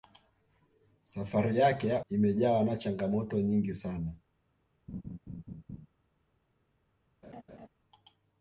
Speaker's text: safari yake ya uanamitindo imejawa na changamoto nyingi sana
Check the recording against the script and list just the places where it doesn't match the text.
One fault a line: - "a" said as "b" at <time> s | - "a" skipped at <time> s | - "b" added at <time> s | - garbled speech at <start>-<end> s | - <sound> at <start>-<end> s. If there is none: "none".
- "uanamitindo" skipped at 2.0 s
- laugh at 4.9-5.9 s
- laugh at 7.2-7.7 s